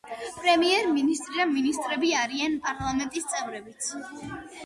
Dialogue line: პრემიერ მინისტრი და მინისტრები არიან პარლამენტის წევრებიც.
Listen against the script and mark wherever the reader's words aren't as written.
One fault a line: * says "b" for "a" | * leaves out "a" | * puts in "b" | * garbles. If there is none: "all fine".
all fine